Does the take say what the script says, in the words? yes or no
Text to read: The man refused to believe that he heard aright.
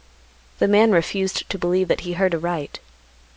yes